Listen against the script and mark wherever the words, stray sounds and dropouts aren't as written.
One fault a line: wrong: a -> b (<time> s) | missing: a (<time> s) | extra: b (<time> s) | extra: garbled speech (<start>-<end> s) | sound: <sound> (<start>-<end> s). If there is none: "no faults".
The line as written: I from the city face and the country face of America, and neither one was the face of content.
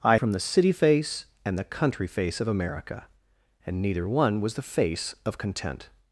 no faults